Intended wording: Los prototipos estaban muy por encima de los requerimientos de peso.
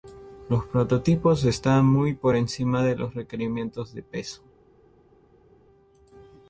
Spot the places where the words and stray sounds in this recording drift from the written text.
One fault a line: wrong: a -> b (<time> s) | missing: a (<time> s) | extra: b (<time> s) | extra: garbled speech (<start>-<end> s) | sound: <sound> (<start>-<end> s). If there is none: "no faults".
no faults